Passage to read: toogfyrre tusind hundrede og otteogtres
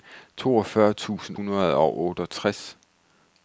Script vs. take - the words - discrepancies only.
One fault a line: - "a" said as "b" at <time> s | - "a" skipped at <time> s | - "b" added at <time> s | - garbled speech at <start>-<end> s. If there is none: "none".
none